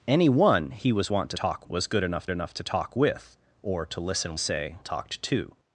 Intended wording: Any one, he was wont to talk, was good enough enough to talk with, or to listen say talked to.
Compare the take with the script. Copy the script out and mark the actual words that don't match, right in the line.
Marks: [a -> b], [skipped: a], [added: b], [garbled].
Any one, he was wont to talk, was good enough enough to talk with, or to listen say talked to.